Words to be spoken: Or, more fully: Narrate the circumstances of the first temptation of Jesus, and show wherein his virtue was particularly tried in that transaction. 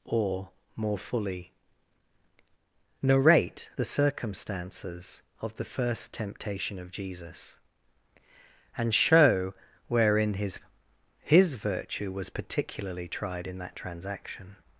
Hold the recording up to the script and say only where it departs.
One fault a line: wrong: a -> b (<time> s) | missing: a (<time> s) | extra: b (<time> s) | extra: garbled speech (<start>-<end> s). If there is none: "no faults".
extra: his (11.2 s)